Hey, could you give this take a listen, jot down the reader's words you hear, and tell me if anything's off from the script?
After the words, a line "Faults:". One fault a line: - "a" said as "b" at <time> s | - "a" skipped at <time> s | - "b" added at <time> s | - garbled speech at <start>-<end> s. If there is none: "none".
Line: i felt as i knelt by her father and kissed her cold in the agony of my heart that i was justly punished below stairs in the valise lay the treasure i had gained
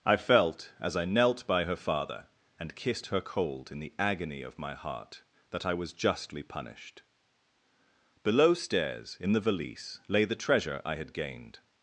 i felt as i knelt by her father and kissed her cold in the agony of my heart that i was justly punished below stairs in the valise lay the treasure i had gained
Faults:
none